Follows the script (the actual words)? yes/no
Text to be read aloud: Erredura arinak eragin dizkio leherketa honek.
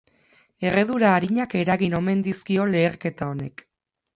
no